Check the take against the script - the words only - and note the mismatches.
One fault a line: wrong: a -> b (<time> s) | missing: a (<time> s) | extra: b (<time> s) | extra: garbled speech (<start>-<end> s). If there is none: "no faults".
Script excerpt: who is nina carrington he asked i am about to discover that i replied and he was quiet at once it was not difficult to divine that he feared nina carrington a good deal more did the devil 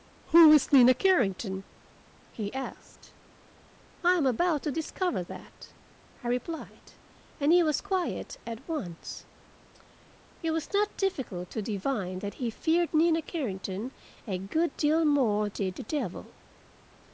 no faults